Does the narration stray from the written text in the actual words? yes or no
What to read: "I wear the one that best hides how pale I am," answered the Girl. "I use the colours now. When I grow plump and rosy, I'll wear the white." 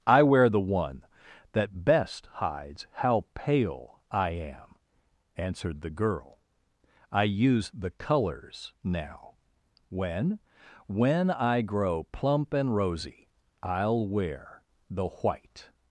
yes